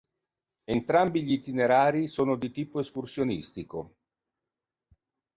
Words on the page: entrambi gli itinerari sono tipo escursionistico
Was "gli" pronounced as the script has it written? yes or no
yes